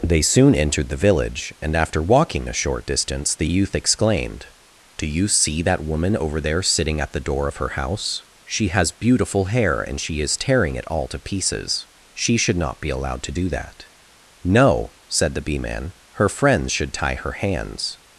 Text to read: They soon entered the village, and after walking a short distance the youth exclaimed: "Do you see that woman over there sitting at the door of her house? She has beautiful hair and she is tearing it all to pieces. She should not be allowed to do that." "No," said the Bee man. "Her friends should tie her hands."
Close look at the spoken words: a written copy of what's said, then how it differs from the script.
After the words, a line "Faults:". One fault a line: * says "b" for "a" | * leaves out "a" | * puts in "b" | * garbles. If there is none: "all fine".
They soon entered the village, and after walking a short distance the youth exclaimed: "Do you see that woman over there sitting at the door of her house? She has beautiful hair and she is tearing it all to pieces. She should not be allowed to do that." "No," said the Bee man. "Her friends should tie her hands."
Faults:
all fine